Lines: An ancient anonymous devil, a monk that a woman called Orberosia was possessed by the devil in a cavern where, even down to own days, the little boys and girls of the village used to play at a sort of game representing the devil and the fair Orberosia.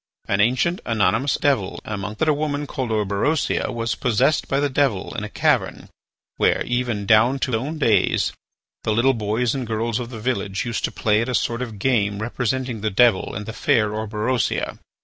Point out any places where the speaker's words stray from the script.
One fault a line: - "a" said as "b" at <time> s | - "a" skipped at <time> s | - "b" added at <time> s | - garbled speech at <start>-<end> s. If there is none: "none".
none